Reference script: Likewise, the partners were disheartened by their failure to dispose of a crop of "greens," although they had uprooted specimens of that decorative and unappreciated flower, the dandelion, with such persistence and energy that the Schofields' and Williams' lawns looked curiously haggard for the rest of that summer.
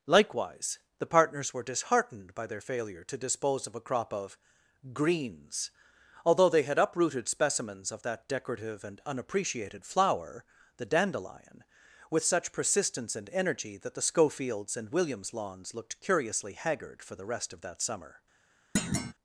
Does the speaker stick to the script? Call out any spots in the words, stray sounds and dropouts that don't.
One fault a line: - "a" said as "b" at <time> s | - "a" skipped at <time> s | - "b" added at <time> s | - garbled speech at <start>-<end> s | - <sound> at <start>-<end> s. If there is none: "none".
- thud at 18.8-19.1 s